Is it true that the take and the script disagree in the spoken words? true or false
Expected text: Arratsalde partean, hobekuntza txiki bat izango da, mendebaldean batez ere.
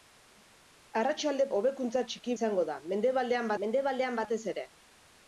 true